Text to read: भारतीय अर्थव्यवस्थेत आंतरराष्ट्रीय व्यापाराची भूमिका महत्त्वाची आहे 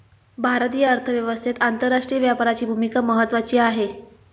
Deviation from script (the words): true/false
false